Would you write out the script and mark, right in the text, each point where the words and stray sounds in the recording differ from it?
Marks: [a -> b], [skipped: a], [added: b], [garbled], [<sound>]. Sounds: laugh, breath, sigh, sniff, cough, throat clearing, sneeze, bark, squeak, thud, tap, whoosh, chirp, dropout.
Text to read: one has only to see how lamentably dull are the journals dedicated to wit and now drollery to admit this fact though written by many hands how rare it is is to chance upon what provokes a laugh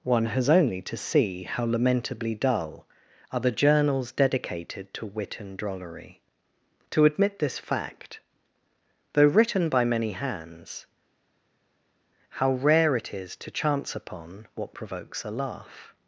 one has only to see how lamentably dull are the journals dedicated to wit and [skipped: now] drollery to admit this fact though written by many hands how rare it is [skipped: is] to chance upon what provokes a laugh